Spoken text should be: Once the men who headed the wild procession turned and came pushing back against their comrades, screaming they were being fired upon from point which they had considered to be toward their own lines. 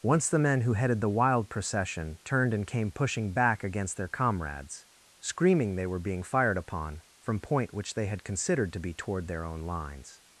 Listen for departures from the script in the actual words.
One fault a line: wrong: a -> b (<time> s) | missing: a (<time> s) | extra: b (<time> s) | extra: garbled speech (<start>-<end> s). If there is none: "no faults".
no faults